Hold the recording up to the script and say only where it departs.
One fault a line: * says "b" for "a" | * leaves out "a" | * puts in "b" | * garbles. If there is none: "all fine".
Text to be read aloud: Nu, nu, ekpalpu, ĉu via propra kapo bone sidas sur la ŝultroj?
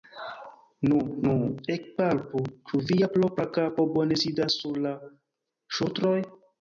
all fine